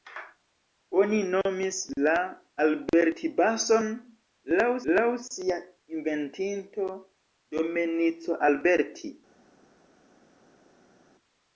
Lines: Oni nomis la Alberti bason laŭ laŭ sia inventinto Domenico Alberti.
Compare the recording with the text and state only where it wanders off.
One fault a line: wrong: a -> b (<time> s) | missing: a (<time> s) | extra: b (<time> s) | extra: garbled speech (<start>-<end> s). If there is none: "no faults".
no faults